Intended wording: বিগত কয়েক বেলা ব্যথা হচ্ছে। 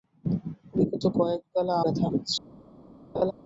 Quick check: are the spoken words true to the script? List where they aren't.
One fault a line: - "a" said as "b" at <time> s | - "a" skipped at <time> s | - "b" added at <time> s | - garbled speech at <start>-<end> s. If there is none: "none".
none